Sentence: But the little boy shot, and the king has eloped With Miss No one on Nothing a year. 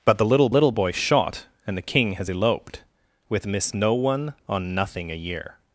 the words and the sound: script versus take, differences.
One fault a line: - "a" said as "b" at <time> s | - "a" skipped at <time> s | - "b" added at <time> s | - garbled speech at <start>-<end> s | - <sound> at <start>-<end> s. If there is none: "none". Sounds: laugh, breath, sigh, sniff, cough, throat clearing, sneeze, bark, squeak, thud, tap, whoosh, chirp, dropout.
- "little" added at 0.5 s